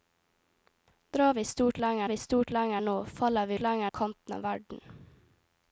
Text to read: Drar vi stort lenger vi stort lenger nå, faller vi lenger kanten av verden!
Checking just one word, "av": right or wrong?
right